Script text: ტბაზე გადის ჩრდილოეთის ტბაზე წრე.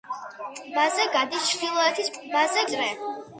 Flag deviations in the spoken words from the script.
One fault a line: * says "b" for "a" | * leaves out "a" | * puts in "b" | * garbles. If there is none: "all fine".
all fine